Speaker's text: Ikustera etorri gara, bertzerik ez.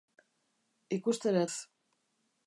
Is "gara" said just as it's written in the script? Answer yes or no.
no